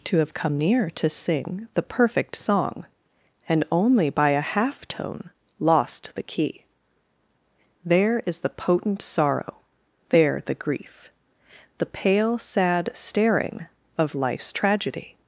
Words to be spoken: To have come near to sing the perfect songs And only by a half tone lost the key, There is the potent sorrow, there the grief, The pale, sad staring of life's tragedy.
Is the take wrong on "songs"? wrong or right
wrong